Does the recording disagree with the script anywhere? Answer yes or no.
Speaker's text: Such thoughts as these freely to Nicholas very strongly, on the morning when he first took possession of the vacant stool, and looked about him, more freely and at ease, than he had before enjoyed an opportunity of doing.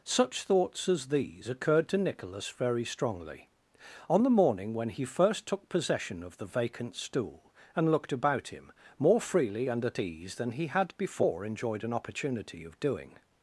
yes